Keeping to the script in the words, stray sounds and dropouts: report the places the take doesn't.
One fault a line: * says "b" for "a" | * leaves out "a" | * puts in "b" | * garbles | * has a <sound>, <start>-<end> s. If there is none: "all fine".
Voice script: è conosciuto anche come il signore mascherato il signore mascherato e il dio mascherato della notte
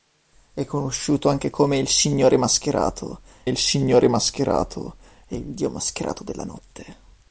all fine